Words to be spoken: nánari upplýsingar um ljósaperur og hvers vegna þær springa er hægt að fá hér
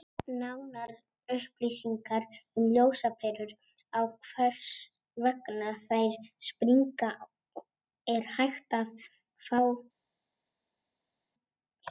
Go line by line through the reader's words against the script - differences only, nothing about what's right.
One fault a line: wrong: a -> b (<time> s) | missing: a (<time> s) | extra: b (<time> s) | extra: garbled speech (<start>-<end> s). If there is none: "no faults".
no faults